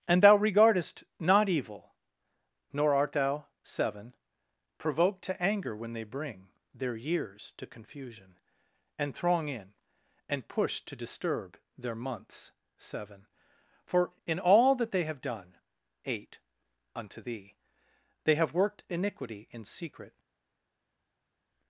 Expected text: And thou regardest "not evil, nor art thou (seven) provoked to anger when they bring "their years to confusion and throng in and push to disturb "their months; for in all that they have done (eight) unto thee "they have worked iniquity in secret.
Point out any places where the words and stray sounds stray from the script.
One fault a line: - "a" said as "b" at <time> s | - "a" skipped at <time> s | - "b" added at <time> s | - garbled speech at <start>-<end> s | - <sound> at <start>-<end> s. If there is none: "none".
- "seven" added at 12.8 s